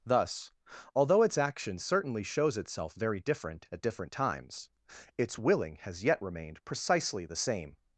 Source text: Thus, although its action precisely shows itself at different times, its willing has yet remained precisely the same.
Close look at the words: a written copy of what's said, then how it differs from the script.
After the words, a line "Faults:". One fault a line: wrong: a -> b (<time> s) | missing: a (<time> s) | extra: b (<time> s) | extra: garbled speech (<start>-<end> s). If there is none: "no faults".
Thus, although its action certainly shows itself very different at different times, its willing has yet remained precisely the same.
Faults:
wrong: precisely -> certainly (1.8 s)
extra: very different (3.0 s)